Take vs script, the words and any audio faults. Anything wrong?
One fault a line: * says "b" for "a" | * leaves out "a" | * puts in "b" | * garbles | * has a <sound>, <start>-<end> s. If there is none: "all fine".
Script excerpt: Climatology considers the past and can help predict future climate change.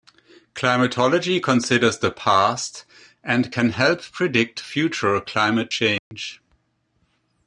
* has a dropout, 6.0-6.1 s